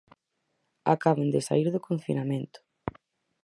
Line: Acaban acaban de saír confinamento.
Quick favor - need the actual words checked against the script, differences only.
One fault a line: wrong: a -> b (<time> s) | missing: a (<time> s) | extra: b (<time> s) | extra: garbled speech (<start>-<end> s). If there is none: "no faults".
missing: acaban (1.3 s)
extra: do (1.7 s)